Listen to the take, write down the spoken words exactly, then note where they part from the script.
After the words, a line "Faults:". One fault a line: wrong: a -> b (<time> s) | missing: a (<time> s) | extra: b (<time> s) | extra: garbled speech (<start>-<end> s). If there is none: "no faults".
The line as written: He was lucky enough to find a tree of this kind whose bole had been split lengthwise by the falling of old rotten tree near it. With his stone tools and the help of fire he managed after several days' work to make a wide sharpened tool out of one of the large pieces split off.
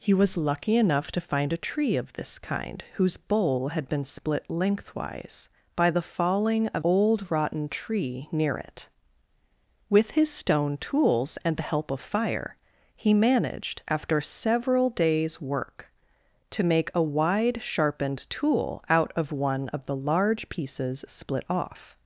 He was lucky enough to find a tree of this kind whose bole had been split lengthwise by the falling of old rotten tree near it. With his stone tools and the help of fire he managed after several days' work to make a wide sharpened tool out of one of the large pieces split off.
Faults:
no faults